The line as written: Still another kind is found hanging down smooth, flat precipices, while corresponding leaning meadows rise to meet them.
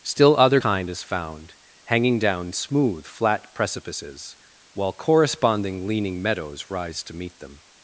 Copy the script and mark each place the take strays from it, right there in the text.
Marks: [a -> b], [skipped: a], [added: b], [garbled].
Still [another -> other] kind is found hanging down smooth, flat precipices, while corresponding leaning meadows rise to meet them.